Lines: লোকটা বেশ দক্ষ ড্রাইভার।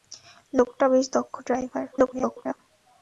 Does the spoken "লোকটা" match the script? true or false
true